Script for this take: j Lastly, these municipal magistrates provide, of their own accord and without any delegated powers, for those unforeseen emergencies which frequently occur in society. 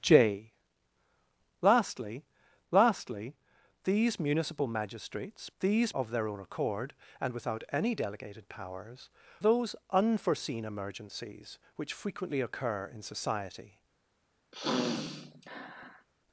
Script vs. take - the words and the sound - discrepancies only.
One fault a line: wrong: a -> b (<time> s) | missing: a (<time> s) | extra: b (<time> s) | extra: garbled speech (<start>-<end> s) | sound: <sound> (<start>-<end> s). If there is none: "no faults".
extra: Lastly (2.7 s)
wrong: provide -> these (5.6 s)
missing: for (9.1 s)
sound: sniff (14.5-16.1 s)